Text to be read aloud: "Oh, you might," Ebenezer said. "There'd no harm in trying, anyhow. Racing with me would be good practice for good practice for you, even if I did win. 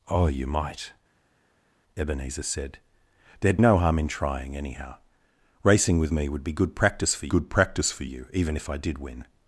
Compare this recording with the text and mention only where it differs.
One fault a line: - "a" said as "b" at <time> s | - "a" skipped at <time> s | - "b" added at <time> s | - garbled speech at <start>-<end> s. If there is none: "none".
none